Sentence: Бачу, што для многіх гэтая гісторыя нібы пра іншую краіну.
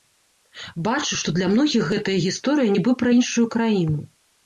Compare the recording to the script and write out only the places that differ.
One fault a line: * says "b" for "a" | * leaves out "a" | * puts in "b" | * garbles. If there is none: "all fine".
all fine